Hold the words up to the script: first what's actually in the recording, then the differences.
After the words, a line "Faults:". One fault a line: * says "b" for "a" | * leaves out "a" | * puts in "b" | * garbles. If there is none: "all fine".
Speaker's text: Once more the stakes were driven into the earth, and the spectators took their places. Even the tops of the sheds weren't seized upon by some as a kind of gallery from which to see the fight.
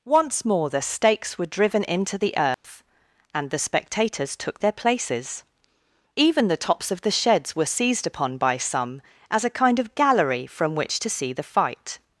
Once more the stakes were driven into the earth, and the spectators took their places. Even the tops of the sheds were seized upon by some as a kind of gallery from which to see the fight.
Faults:
* says "were" for "weren't"